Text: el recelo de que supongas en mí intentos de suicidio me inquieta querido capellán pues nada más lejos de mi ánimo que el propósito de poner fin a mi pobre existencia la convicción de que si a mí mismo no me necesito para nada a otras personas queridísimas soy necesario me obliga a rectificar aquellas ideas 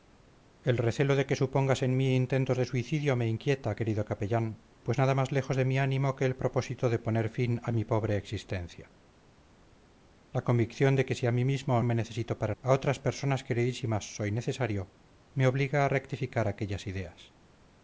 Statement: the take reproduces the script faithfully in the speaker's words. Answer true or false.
false